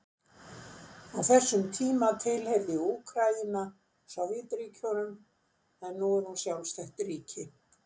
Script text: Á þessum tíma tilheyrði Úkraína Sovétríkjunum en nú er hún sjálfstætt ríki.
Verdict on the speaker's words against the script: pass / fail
pass